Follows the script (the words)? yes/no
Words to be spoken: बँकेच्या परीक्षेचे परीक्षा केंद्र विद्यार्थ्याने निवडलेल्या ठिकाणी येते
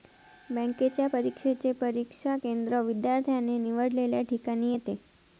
yes